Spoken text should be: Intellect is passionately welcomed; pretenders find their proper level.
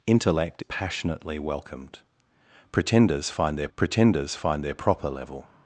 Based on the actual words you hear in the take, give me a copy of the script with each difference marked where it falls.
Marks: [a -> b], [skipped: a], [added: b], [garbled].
Intellect [skipped: is] passionately welcomed; pretenders find their [added: pretenders find their] proper level.